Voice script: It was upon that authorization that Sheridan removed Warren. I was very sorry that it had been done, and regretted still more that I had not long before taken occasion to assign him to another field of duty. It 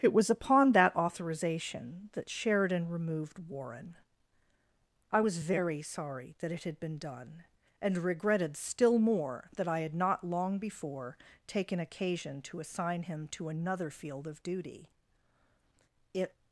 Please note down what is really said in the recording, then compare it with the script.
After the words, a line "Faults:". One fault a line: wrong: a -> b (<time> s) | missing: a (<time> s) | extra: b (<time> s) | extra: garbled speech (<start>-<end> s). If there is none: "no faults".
It was upon that authorization that Sheridan removed Warren. I was very sorry that it had been done, and regretted still more that I had not long before taken occasion to assign him to another field of duty. It
Faults:
no faults